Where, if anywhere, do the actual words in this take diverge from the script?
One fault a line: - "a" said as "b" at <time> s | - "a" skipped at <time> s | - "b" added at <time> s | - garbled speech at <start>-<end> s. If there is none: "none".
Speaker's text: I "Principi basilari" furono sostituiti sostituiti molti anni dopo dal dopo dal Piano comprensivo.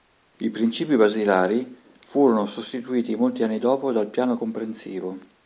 - "sostituiti" skipped at 3.2 s
- "dopo dal" skipped at 4.1 s